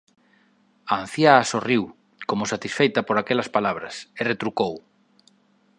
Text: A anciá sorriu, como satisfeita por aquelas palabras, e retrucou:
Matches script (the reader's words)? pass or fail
pass